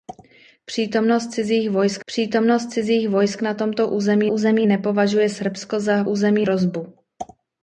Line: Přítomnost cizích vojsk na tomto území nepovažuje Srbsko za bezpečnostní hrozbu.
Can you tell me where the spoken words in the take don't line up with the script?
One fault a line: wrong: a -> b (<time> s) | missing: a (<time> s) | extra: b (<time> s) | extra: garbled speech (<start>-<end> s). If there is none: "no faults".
extra: přítomnost cizích vojsk (2.1 s)
extra: území (4.3 s)
wrong: bezpečnostní -> území (6.0 s)